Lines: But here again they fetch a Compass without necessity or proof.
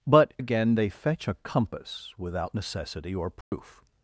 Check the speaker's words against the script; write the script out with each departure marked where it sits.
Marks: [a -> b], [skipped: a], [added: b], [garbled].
But [skipped: here] again they fetch a Compass without necessity or proof.